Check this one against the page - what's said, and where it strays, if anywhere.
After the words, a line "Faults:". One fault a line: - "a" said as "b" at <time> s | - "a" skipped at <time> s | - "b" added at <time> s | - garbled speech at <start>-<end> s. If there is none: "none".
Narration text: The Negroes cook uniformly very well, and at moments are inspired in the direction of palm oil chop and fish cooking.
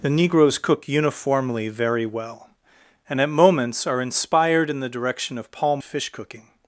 The Negroes cook uniformly very well, and at moments are inspired in the direction of palm fish cooking.
Faults:
- "oil chop and" skipped at 5.8 s